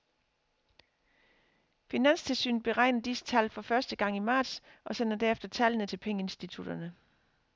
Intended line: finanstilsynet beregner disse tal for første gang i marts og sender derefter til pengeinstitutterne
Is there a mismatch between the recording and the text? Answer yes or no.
yes